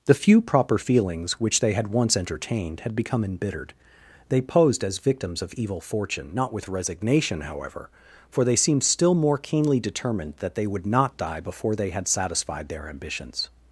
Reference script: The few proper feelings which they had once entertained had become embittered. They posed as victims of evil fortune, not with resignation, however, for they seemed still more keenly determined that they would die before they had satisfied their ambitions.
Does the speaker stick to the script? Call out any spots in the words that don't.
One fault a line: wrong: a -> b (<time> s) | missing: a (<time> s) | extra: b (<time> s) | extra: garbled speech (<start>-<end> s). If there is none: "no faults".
extra: not (10.9 s)